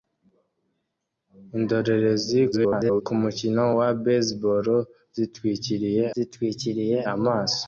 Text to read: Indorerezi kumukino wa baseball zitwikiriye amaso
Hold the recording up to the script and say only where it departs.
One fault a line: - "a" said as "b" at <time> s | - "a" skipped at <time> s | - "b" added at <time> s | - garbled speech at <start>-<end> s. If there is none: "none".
- garbled speech at 2.5-3.0 s
- "zitwikiriye" added at 6.1 s